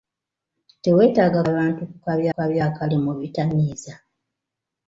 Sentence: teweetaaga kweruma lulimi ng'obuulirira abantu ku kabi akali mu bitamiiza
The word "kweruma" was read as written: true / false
false